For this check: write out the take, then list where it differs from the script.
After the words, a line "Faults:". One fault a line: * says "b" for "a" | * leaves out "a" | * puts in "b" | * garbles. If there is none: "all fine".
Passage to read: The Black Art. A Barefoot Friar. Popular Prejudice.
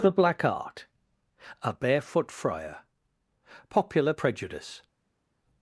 The Black Art. A Barefoot Friar. Popular Prejudice.
Faults:
all fine